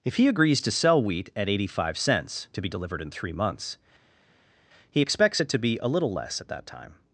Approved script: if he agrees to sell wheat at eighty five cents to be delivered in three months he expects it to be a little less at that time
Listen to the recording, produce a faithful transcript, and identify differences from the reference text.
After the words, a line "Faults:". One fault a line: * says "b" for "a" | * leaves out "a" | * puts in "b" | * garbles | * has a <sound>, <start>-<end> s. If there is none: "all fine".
if he agrees to sell wheat at eighty five cents to be delivered in three months he expects it to be a little less at that time
Faults:
all fine